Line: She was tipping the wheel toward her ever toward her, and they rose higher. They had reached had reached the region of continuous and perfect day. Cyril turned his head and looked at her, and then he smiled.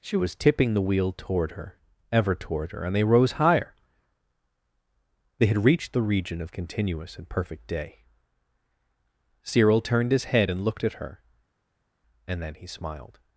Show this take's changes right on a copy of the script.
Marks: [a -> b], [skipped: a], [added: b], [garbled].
She was tipping the wheel toward her ever toward her, and they rose higher. They had reached [skipped: had reached] the region of continuous and perfect day. Cyril turned his head and looked at her, and then he smiled.